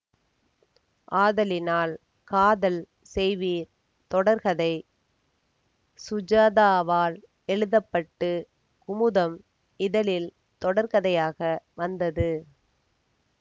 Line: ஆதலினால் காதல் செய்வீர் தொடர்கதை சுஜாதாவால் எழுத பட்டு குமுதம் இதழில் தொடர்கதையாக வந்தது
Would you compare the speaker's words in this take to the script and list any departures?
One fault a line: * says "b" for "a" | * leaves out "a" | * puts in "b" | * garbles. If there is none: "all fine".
all fine